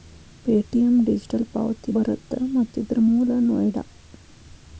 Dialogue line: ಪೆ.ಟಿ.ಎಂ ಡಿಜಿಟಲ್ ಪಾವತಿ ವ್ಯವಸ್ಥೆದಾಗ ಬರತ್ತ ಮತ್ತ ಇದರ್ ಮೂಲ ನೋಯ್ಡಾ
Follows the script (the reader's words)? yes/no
no